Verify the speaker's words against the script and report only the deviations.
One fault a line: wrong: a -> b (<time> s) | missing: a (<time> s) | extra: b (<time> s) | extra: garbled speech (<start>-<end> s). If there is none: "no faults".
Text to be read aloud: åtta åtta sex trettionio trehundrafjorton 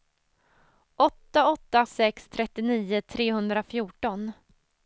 no faults